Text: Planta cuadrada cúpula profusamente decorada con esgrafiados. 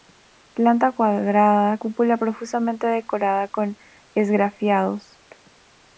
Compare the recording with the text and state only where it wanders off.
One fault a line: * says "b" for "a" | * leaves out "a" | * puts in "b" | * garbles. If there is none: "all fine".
all fine